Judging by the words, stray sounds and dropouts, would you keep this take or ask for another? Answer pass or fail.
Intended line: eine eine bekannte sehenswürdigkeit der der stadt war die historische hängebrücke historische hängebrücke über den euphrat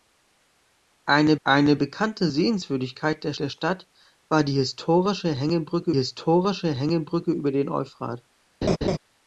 fail